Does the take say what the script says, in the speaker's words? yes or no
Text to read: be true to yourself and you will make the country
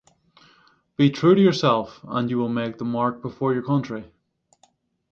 no